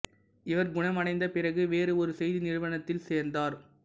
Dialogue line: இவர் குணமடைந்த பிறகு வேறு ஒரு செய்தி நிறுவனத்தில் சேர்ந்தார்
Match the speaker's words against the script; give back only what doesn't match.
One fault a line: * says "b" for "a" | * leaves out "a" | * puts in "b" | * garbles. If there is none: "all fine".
all fine